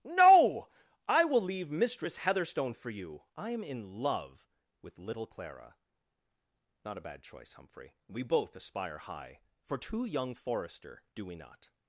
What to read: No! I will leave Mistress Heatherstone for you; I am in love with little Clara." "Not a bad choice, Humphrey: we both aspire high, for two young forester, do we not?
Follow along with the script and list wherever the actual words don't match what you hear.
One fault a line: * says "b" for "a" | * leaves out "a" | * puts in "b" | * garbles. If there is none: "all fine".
all fine